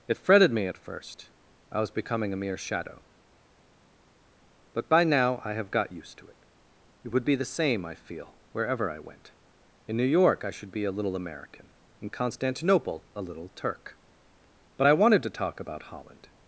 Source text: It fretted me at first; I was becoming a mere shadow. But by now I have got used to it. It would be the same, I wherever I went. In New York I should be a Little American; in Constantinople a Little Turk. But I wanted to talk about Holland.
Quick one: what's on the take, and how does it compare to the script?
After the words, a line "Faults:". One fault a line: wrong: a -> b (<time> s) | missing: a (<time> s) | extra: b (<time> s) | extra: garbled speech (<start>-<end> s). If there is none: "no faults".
It fretted me at first; I was becoming a mere shadow. But by now I have got used to it. It would be the same, I feel, wherever I went. In New York I should be a Little American; in Constantinople a Little Turk. But I wanted to talk about Holland.
Faults:
extra: feel (7.9 s)